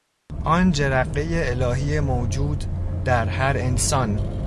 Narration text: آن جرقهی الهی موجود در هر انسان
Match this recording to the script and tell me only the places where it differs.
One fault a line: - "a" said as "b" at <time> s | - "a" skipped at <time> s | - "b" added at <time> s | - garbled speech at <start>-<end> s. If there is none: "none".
none